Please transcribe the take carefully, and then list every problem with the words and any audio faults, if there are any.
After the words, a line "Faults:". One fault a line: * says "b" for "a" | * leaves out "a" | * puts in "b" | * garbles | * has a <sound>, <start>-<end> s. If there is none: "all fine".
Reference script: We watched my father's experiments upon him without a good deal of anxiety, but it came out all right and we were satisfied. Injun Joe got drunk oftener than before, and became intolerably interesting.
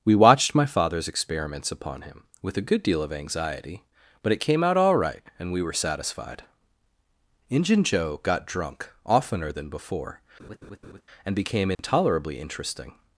We watched my father's experiments upon him with a good deal of anxiety, but it came out all right and we were satisfied. Injun Joe got drunk oftener than before, and became intolerably interesting.
Faults:
* says "with" for "without"
* has a laugh, 10.4-11.0 s
* has a dropout, 11.7-11.8 s